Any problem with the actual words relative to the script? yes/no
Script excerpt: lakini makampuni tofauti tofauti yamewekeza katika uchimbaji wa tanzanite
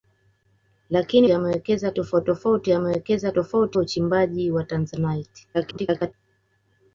yes